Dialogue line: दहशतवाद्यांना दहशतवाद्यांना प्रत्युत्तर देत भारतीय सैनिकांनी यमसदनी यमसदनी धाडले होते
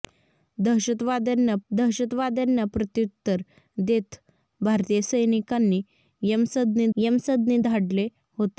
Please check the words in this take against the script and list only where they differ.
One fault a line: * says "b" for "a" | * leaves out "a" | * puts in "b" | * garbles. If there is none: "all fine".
all fine